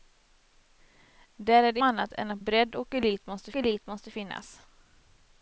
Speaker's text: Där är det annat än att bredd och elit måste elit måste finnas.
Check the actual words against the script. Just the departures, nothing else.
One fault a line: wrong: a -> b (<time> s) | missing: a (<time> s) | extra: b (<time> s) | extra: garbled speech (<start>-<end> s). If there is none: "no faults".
no faults